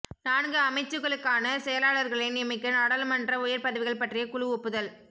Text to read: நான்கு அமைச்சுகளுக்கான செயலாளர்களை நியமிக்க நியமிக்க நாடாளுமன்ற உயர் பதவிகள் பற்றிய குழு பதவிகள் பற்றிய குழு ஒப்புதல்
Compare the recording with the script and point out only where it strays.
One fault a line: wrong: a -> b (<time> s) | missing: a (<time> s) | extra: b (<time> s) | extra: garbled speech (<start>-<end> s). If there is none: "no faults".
missing: நியமிக்க (2.8 s)
missing: பதவிகள் பற்றிய குழு (4.5 s)